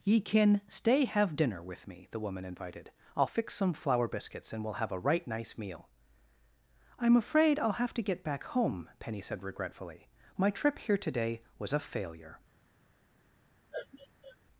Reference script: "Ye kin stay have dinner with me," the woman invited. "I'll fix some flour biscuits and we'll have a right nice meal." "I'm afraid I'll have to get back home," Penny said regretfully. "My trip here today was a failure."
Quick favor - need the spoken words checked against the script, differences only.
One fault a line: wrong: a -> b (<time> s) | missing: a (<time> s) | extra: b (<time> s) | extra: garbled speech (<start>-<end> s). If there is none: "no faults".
no faults